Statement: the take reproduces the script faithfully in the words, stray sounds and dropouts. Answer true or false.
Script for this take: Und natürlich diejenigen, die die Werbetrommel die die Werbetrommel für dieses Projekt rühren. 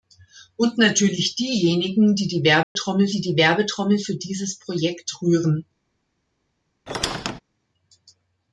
false